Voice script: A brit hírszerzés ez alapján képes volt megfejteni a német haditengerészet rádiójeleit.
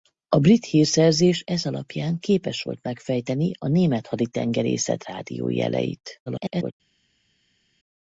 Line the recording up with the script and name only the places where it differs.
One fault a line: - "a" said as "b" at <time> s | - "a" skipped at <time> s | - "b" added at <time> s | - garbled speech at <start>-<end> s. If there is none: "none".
- garbled speech at 6.3-6.7 s